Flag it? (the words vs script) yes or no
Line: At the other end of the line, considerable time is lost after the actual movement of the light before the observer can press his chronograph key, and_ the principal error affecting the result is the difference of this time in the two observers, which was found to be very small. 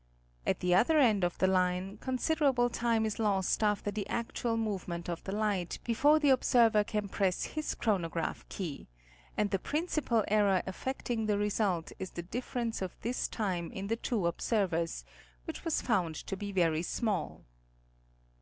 no